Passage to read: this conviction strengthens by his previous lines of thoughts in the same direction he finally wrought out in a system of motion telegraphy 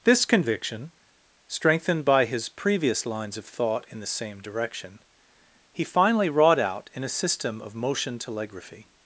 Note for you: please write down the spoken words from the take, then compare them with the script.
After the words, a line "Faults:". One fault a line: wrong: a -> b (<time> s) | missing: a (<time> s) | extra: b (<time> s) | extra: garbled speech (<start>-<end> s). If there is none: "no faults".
this conviction strengthened by his previous lines of thought in the same direction he finally wrought out in a system of motion telegraphy
Faults:
wrong: strengthens -> strengthened (1.5 s)
wrong: thoughts -> thought (3.5 s)